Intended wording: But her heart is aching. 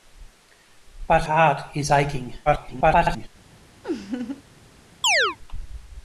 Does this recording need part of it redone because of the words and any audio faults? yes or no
yes